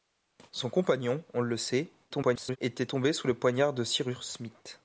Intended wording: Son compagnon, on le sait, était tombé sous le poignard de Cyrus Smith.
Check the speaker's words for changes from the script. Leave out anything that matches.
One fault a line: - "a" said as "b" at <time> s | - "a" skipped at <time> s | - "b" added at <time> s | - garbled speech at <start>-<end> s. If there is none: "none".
- garbled speech at 2.1-2.6 s